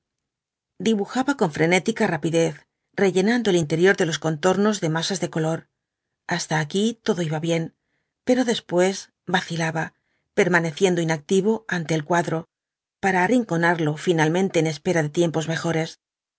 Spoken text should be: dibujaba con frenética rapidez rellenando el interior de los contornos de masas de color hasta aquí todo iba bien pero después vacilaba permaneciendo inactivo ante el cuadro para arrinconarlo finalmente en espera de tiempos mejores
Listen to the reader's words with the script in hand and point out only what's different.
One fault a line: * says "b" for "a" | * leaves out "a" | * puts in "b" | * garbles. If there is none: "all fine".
all fine